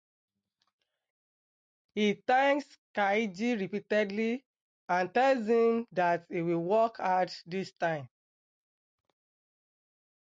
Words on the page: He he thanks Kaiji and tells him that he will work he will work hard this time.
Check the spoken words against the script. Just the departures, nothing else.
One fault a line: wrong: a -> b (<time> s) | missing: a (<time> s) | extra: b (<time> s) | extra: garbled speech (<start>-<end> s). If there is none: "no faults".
missing: he (2.2 s)
extra: repeatedly (3.6 s)
missing: he will work (7.0 s)